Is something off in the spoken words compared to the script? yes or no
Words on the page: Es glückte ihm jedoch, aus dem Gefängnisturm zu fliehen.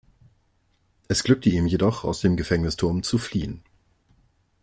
no